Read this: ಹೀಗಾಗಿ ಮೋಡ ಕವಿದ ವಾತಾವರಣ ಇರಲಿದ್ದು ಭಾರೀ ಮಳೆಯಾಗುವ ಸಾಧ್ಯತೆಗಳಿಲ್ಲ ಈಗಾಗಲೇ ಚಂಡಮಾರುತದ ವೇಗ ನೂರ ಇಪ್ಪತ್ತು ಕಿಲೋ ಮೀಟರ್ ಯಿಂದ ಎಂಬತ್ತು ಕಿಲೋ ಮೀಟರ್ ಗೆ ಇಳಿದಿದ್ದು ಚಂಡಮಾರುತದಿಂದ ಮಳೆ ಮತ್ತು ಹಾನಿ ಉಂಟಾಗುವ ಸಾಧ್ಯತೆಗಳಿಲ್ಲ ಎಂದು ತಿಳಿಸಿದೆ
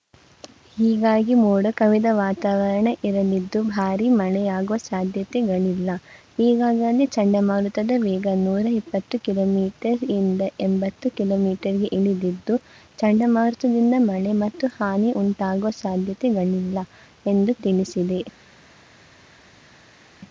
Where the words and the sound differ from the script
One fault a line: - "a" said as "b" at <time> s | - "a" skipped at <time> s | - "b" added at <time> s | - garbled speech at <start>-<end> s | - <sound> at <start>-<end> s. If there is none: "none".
none